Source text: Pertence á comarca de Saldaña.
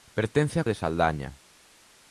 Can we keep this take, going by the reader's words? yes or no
no